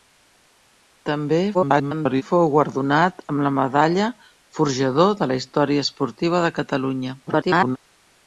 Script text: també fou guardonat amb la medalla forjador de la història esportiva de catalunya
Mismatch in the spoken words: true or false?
true